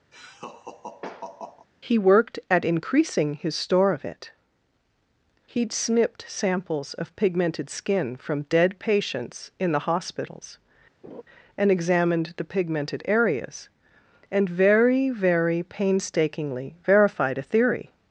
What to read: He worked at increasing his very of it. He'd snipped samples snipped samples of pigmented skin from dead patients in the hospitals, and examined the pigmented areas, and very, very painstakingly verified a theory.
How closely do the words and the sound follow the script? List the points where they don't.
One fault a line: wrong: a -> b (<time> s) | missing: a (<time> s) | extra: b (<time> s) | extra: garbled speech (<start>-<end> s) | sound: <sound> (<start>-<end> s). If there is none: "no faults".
sound: laugh (0.1-1.7 s)
wrong: very -> store (3.6 s)
missing: snipped samples (6.9 s)
sound: laugh (11.0-11.2 s)